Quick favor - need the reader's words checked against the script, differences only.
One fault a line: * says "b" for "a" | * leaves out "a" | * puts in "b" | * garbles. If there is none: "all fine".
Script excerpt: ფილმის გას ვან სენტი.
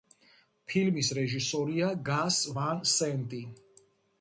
* puts in "რეჟისორია"